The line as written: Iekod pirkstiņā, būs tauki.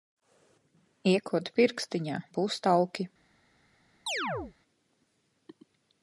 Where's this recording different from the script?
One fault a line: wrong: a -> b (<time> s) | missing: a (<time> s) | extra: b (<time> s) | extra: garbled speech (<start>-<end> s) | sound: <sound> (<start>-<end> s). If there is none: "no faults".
sound: chirp (4.1-4.5 s)